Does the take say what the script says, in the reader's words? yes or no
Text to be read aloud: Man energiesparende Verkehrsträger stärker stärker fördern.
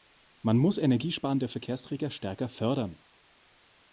no